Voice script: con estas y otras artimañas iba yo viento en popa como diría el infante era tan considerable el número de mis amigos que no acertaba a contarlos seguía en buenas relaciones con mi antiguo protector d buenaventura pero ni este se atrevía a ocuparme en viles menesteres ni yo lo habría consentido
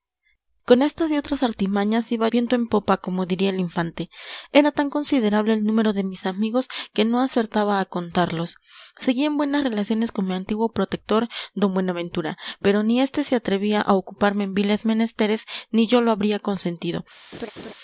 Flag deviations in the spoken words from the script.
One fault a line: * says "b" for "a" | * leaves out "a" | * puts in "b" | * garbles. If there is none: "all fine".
* leaves out "yo"